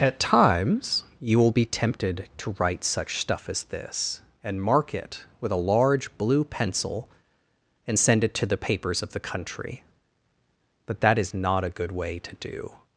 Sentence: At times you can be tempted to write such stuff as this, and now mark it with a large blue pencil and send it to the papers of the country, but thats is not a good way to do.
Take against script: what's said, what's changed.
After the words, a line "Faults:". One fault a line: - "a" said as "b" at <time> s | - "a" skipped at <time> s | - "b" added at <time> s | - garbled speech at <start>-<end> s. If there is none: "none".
At times you will be tempted to write such stuff as this, and mark it with a large blue pencil and send it to the papers of the country, but that is not a good way to do.
Faults:
- "can" said as "will" at 1.4 s
- "now" skipped at 4.6 s
- "thats" said as "that" at 11.0 s